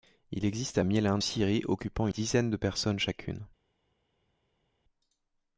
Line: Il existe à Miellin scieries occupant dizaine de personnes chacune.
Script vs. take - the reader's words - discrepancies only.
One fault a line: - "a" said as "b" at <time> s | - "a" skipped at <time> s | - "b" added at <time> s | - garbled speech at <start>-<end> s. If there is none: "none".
none